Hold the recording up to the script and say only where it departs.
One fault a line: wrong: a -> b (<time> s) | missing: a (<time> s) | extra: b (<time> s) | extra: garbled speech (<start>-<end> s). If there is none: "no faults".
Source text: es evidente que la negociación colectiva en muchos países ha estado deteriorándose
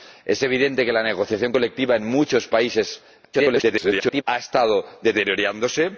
extra: garbled speech (3.3-4.2 s)